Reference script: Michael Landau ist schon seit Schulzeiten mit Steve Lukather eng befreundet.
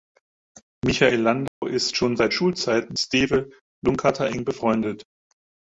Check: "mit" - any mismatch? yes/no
yes